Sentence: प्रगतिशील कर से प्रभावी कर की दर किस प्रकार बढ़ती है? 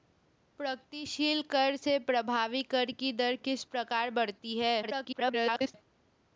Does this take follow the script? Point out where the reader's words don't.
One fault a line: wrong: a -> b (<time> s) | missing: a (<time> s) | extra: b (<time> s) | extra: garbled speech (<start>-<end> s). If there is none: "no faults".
extra: garbled speech (4.8-5.7 s)